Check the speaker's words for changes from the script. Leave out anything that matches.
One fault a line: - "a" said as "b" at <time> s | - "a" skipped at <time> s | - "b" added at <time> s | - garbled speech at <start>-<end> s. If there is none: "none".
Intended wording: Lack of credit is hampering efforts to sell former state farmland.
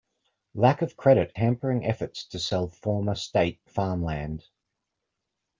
- "is" skipped at 1.3 s